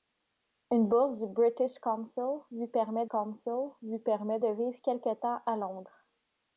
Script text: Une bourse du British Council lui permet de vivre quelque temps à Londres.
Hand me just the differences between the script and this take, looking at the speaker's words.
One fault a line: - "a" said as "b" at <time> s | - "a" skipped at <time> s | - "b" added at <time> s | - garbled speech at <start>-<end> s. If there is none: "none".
- "Council lui permet" added at 3.0 s